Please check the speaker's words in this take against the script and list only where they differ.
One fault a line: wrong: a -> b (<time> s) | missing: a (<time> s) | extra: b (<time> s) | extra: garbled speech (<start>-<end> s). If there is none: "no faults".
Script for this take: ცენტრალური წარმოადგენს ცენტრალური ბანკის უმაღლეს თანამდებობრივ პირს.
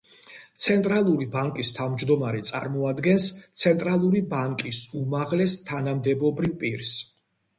extra: ბანკის თავმჯდომარე (1.4 s)